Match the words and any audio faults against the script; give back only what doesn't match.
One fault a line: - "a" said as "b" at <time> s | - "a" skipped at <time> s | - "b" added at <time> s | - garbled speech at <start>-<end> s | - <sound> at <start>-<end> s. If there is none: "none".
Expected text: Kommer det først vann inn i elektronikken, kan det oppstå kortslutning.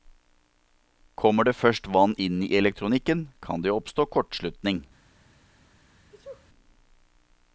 - sneeze at 6.1-6.5 s